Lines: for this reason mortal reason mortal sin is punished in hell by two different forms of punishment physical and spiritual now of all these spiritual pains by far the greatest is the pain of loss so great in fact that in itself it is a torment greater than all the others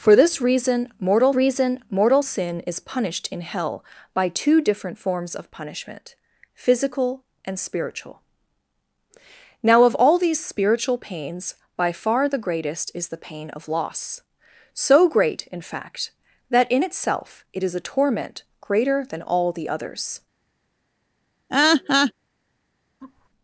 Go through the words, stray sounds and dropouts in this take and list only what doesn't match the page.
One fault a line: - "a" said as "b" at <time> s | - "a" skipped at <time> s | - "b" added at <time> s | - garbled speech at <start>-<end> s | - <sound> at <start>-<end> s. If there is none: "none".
- laugh at 21.5-22.1 s
- laugh at 23.0-23.3 s